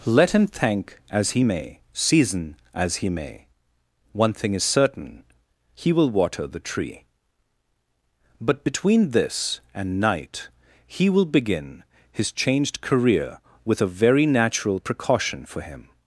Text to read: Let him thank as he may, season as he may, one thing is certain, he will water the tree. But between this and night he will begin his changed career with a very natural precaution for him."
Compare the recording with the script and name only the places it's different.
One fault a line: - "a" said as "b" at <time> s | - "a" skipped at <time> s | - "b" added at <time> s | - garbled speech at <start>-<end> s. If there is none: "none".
none